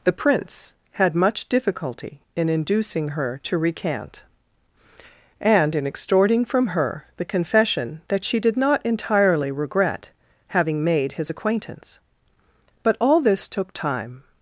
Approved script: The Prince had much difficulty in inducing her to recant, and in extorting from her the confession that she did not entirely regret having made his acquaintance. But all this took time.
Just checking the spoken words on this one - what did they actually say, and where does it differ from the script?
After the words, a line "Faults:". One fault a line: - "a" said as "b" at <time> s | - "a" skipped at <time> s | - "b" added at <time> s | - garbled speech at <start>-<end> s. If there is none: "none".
The Prince had much difficulty in inducing her to recant, and in extorting from her the confession that she did not entirely regret having made his acquaintance. But all this took time.
Faults:
none